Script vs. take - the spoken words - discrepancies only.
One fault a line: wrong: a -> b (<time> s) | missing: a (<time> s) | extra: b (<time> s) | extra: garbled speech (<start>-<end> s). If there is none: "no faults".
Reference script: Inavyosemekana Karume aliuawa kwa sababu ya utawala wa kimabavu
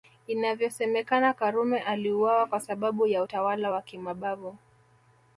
no faults